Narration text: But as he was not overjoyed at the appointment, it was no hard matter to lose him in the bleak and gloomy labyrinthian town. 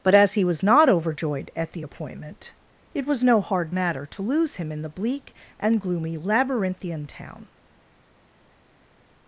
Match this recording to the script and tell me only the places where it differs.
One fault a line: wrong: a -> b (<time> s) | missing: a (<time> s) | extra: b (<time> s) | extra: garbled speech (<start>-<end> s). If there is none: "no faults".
no faults